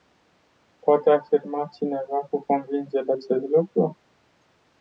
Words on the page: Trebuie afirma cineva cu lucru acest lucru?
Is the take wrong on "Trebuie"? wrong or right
wrong